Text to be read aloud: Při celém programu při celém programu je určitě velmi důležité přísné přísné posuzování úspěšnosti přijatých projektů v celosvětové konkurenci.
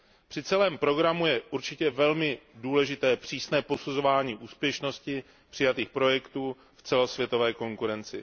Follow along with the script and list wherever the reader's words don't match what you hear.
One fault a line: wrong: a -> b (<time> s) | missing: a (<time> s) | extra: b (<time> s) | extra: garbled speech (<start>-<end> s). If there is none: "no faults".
missing: při celém programu (1.2 s)
missing: přísné (3.6 s)